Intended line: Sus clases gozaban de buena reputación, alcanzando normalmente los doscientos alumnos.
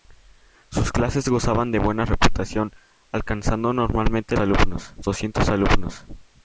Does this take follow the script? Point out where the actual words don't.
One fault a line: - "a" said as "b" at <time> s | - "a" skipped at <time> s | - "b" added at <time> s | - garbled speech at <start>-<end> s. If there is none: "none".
- "los" said as "alumnos" at 4.4 s